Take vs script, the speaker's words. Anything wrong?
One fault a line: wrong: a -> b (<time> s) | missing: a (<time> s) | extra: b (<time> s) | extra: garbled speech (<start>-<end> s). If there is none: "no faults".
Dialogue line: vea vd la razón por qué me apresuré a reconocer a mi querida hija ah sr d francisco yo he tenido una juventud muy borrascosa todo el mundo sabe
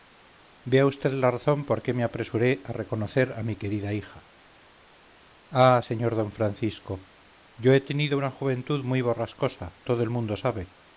no faults